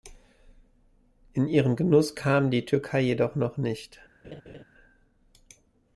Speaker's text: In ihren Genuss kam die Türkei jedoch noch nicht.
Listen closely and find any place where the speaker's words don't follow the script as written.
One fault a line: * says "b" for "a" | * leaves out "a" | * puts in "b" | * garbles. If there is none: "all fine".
all fine